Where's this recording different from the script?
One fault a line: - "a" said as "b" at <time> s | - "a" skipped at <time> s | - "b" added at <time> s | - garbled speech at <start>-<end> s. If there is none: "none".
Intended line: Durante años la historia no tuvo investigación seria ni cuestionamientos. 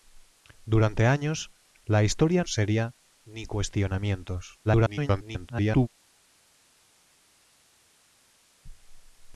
- "no tuvo investigación" skipped at 2.4 s
- garbled speech at 4.6-5.9 s